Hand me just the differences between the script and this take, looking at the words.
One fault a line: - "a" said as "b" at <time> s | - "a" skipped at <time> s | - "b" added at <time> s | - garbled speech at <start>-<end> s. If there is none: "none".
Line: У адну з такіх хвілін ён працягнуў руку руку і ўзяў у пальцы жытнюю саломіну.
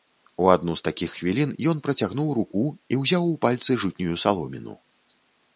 - "руку" skipped at 2.6 s